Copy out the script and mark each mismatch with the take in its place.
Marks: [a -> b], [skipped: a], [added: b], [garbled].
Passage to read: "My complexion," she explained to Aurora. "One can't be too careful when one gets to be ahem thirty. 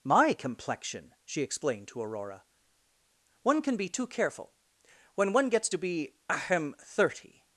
"My complexion," she explained to Aurora. "One [can't -> can] be too careful when one gets to be ahem thirty.